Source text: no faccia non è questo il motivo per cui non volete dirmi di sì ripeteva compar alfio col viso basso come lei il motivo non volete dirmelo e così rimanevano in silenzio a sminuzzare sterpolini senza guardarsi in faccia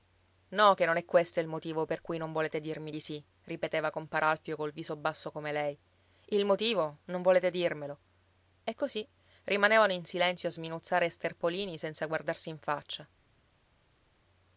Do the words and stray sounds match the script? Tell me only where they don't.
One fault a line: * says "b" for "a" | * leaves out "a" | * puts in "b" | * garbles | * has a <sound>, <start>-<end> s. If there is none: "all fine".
* says "che" for "faccia"